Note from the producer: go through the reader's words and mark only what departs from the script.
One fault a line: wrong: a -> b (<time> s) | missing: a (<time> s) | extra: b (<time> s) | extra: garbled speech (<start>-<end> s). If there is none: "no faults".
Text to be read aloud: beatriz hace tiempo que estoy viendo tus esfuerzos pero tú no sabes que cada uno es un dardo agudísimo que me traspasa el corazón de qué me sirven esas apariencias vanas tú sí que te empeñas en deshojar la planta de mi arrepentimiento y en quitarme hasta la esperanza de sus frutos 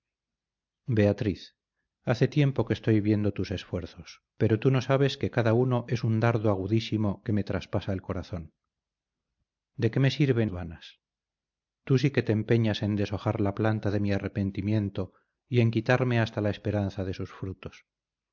missing: esas apariencias (10.5 s)